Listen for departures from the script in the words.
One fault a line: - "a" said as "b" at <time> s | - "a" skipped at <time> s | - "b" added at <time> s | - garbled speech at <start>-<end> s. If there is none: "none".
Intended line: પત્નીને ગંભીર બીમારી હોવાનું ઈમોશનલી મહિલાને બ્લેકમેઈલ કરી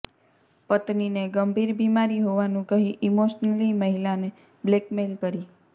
- "કહી" added at 2.7 s